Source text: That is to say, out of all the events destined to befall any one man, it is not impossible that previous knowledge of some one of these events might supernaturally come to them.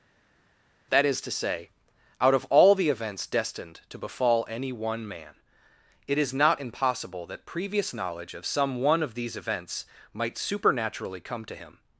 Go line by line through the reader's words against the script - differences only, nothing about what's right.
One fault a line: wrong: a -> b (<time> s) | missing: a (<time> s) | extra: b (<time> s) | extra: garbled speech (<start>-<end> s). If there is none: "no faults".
wrong: them -> him (11.6 s)